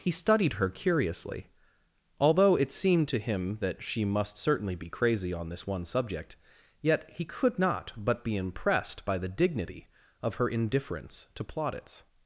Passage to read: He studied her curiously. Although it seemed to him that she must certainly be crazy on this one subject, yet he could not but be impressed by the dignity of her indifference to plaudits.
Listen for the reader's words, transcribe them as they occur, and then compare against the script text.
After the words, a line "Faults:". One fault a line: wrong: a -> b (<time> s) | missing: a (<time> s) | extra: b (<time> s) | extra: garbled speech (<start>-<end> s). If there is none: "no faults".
He studied her curiously. Although it seemed to him that she must certainly be crazy on this one subject, yet he could not but be impressed by the dignity of her indifference to plaudits.
Faults:
no faults